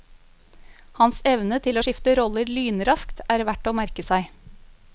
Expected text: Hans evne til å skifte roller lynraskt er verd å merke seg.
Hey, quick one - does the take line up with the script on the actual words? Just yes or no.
yes